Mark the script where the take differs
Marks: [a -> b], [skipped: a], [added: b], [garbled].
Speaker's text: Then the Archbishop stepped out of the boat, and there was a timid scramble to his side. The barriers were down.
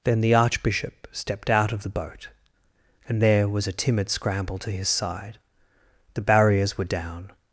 Then the Archbishop stepped out of the boat, and there was a timid scramble to his side. The barriers were down.